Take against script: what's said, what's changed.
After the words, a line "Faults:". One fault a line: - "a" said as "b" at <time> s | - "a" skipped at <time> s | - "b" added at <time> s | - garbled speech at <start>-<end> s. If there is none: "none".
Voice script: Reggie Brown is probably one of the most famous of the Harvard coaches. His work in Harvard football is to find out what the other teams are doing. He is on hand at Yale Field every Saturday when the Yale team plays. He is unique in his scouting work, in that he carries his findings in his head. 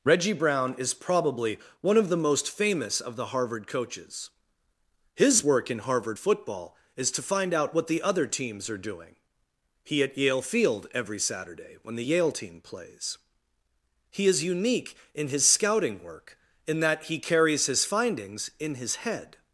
Reggie Brown is probably one of the most famous of the Harvard coaches. His work in Harvard football is to find out what the other teams are doing. He at Yale Field every Saturday when the Yale team plays. He is unique in his scouting work, in that he carries his findings in his head.
Faults:
- "is on hand" skipped at 10.0 s